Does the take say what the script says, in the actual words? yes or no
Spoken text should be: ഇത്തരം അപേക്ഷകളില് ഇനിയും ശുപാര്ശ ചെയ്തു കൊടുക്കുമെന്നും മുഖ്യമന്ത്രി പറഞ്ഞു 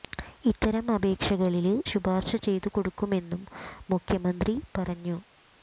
no